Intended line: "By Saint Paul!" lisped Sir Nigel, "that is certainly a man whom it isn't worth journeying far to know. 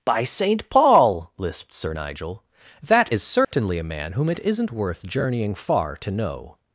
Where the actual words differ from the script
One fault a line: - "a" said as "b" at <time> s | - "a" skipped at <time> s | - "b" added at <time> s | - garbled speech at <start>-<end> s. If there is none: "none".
none